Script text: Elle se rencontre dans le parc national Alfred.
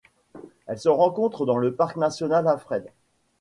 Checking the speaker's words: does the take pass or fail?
pass